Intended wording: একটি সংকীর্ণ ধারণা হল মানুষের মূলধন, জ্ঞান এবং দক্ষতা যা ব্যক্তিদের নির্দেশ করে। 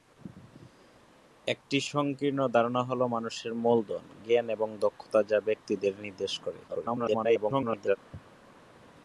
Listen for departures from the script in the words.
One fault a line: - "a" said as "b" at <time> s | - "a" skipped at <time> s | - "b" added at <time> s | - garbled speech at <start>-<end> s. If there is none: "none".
- garbled speech at 6.7-8.0 s